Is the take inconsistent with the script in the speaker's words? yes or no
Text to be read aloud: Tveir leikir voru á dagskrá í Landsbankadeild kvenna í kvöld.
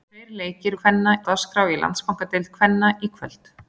yes